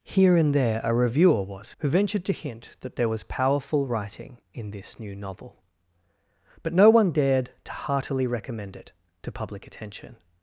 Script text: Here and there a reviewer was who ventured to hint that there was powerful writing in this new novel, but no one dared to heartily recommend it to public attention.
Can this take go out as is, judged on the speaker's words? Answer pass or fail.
pass